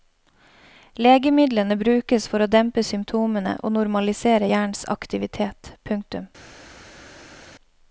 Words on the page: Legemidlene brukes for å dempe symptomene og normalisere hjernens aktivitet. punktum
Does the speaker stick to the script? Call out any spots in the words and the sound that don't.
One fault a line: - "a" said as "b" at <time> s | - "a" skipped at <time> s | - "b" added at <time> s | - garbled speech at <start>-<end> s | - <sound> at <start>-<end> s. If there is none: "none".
none